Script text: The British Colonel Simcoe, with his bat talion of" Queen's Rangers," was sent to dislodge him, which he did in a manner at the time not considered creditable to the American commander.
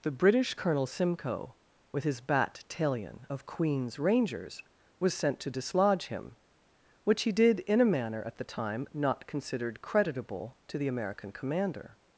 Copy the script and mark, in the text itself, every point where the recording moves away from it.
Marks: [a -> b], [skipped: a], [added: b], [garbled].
The British Colonel Simcoe, with his bat talion of" Queen's Rangers," was sent to dislodge him, which he did in a manner at the time not considered creditable to the American commander.